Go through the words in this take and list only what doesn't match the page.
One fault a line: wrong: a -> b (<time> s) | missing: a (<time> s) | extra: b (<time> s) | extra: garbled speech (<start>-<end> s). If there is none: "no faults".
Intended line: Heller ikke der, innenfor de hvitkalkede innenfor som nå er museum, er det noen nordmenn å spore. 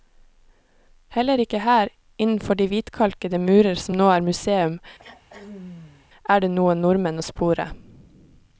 wrong: der -> her (1.6 s)
wrong: innenfor -> murer (3.4 s)